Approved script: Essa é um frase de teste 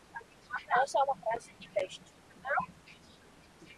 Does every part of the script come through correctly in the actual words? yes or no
no